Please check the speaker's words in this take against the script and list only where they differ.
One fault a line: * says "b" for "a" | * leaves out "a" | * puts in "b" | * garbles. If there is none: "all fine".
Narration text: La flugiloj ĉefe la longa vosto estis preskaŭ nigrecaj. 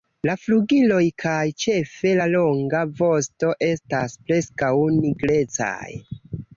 * puts in "kaj"
* says "estas" for "estis"